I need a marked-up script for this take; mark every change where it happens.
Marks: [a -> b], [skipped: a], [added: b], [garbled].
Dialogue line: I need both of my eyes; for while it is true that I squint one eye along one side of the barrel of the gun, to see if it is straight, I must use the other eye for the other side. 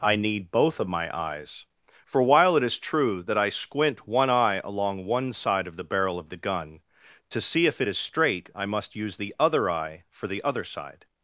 I need both of my eyes; for while it is true that I squint one eye along one side of the barrel of the gun, to see if it is straight, I must use the other eye for the other side.